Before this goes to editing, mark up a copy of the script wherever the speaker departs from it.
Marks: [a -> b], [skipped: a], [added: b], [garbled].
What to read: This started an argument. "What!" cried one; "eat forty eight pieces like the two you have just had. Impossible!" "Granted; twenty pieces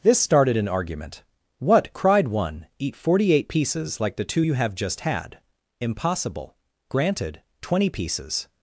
This started an argument. "What!" cried one; "eat forty eight pieces like the two you have just had. Impossible!" "Granted; twenty pieces